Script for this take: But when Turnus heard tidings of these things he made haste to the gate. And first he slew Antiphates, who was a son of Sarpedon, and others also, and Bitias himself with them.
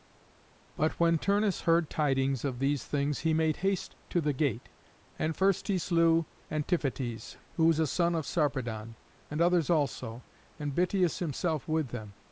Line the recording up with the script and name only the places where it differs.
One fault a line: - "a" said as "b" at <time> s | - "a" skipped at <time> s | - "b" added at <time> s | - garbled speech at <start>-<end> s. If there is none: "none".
none